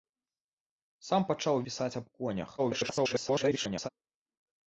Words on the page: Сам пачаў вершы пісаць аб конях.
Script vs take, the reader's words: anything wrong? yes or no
yes